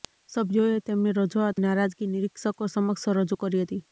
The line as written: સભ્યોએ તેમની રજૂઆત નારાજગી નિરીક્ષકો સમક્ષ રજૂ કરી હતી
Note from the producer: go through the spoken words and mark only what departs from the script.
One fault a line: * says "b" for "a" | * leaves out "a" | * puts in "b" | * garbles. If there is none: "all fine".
all fine